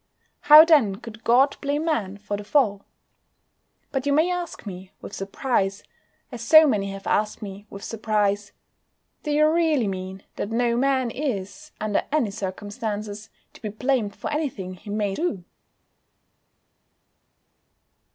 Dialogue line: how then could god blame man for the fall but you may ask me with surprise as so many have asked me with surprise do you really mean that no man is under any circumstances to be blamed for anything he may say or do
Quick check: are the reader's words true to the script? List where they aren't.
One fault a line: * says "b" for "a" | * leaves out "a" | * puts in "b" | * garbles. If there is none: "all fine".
* leaves out "say or"